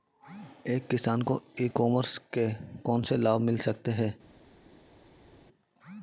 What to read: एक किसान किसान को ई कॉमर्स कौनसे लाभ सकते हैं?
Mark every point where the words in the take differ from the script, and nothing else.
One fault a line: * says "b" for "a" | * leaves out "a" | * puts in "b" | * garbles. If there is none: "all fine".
* leaves out "किसान"
* puts in "के"
* puts in "मिल"